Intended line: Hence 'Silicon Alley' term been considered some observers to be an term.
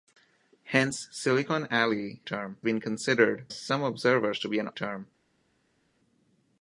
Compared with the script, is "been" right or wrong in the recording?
right